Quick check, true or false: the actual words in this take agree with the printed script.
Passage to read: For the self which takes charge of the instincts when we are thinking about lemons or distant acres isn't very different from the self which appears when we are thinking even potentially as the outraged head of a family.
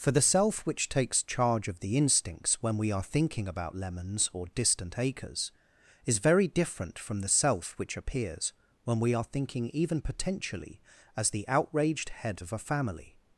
false